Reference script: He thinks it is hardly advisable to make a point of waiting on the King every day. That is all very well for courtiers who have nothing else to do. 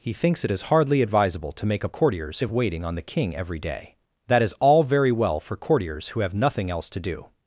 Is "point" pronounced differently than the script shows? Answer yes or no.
yes